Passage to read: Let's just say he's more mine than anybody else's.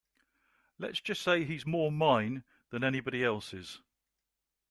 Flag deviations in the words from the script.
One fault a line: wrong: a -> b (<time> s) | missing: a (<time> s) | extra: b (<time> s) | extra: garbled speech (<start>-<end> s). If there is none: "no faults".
no faults